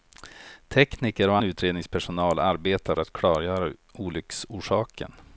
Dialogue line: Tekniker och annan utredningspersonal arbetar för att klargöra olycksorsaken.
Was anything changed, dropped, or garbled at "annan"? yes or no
yes